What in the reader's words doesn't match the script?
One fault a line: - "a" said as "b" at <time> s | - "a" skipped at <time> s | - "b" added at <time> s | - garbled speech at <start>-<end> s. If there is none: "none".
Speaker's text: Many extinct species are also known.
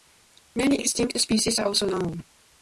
none